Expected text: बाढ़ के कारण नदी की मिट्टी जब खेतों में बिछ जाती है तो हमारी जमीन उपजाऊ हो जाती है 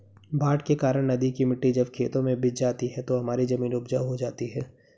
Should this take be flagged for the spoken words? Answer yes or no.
no